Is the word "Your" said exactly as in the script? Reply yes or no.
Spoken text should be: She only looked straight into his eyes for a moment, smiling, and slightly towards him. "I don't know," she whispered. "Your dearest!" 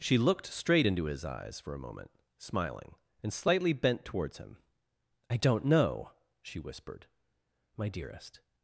no